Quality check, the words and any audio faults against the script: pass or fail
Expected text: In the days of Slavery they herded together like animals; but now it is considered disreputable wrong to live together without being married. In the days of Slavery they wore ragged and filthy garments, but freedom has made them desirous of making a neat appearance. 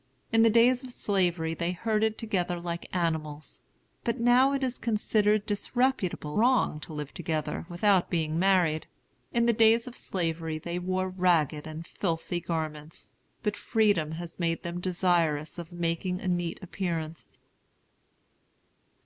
pass